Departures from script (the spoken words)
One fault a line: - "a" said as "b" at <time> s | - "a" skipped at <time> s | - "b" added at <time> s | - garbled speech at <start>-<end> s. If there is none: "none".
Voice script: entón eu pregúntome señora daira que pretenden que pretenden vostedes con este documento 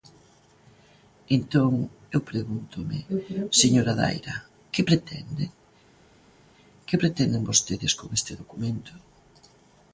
none